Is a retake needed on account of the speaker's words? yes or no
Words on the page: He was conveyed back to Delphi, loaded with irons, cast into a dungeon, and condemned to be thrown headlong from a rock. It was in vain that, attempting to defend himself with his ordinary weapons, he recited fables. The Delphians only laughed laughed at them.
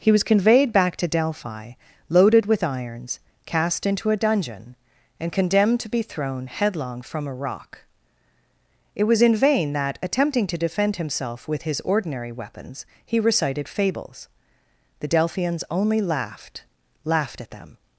no